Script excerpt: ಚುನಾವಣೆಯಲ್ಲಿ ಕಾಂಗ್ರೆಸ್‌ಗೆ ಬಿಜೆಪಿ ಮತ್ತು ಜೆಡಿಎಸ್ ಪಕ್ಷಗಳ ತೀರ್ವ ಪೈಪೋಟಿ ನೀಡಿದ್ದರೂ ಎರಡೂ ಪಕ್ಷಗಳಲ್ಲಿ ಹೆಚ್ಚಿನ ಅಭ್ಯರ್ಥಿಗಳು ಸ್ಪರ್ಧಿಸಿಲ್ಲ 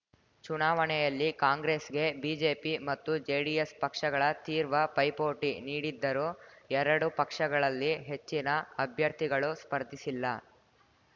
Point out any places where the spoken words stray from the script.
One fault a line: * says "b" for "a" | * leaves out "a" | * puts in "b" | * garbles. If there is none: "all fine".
all fine